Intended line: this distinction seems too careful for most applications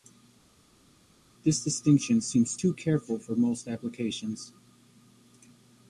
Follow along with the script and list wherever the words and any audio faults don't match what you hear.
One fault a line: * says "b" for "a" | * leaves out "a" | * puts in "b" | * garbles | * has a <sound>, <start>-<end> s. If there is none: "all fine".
all fine